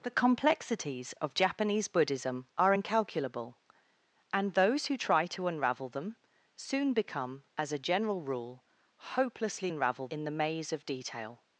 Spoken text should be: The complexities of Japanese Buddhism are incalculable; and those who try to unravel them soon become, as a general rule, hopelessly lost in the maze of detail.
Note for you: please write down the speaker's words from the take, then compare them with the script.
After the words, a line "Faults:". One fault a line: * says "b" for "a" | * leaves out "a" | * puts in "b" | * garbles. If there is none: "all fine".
The complexities of Japanese Buddhism are incalculable; and those who try to unravel them soon become, as a general rule, hopelessly unravel in the maze of detail.
Faults:
* says "unravel" for "lost"